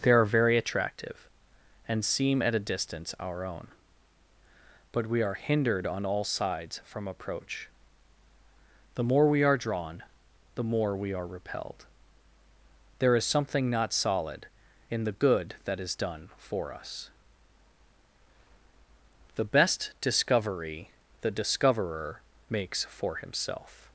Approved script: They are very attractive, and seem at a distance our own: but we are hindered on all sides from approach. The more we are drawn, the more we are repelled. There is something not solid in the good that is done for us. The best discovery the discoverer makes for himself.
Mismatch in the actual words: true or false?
false